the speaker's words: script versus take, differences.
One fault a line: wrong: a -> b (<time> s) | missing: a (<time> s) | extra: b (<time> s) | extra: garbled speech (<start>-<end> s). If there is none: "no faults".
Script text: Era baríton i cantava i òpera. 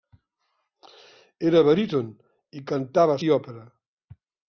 no faults